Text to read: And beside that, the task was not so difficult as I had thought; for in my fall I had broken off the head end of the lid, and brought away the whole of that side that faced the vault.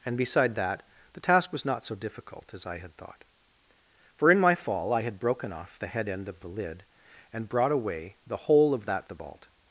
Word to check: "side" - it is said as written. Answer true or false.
false